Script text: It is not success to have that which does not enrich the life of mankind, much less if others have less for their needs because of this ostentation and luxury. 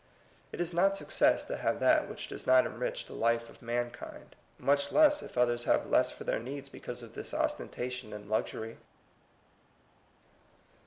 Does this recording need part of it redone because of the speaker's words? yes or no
no